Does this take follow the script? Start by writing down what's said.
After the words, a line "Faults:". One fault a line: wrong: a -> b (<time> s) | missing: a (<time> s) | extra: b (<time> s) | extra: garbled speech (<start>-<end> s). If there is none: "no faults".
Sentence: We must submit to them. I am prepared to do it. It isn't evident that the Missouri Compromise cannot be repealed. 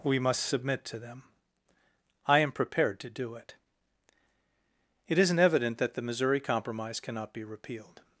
We must submit to them. I am prepared to do it. It isn't evident that the Missouri Compromise cannot be repealed.
Faults:
no faults